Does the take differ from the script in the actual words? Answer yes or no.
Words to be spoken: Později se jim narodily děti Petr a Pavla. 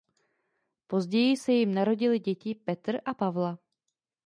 no